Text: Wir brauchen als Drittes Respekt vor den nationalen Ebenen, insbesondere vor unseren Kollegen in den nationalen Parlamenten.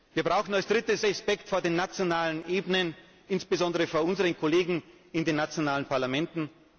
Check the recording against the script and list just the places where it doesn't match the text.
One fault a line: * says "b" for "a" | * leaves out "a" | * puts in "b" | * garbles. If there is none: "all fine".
all fine